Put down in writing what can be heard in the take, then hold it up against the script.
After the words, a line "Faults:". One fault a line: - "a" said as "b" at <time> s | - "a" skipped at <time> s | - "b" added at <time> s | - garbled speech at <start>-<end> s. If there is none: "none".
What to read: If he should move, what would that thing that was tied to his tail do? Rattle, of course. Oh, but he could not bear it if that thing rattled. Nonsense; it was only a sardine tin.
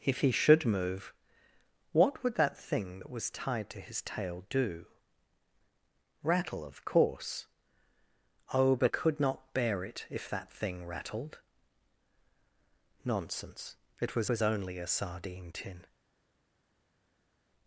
If he should move, what would that thing that was tied to his tail do? Rattle, of course. Oh, but could not bear it if that thing rattled. Nonsense; it was was only a sardine tin.
Faults:
- "he" skipped at 8.9 s
- "was" added at 14.3 s